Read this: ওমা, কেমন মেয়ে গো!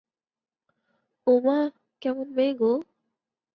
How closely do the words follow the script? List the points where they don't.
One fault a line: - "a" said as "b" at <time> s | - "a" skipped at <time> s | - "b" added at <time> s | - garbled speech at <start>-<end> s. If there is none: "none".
none